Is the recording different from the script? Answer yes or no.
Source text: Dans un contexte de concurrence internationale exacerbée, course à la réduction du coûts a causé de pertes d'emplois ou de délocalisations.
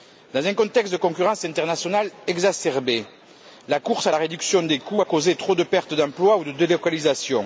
yes